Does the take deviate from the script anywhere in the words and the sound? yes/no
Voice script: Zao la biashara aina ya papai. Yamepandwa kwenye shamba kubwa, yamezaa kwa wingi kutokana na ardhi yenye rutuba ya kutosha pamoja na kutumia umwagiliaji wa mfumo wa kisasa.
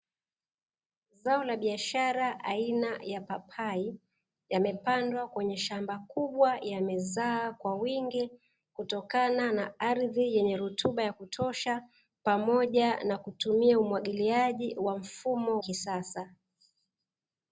yes